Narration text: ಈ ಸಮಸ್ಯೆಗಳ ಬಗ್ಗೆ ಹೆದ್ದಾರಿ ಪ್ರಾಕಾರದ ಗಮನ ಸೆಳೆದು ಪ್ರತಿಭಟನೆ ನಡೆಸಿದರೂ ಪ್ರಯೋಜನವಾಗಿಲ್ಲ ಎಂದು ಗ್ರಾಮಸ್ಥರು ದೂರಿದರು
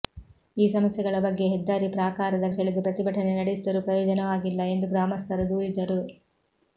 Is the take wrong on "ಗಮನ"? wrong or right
wrong